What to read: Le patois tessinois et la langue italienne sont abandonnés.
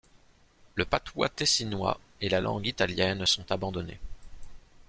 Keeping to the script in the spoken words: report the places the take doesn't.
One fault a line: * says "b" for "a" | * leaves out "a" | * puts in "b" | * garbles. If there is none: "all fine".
all fine